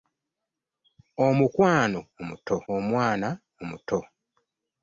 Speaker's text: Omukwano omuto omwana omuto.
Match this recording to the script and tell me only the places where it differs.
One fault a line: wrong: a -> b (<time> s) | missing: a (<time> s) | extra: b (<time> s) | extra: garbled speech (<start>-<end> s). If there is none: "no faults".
no faults